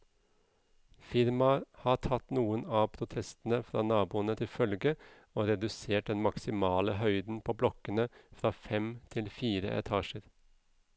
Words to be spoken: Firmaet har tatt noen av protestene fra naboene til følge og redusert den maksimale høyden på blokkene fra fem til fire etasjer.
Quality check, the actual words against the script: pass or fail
pass